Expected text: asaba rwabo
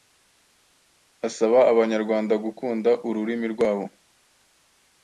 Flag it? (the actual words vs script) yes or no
yes